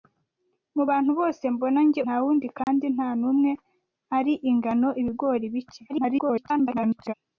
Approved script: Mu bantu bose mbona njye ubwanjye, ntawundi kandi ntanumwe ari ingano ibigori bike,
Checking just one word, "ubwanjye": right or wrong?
wrong